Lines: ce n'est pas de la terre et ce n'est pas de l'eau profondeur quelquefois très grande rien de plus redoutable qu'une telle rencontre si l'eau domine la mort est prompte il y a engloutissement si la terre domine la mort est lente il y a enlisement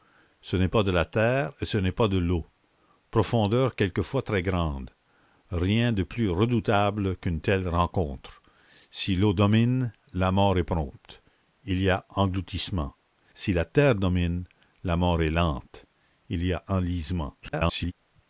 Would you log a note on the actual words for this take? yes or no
yes